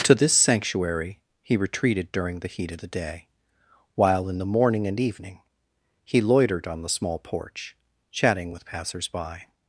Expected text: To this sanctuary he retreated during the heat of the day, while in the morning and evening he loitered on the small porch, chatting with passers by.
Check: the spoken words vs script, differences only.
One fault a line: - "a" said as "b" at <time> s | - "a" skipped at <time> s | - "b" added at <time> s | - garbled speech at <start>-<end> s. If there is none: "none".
none